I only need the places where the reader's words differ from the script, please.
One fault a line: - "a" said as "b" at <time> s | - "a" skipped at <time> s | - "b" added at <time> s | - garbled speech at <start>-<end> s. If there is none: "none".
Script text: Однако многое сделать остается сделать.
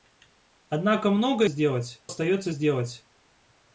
none